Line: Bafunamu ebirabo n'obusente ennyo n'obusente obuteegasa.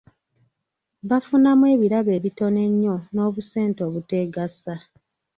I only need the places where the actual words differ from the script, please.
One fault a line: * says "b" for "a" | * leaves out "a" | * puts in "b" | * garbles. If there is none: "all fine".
* says "ebitono" for "n'obusente"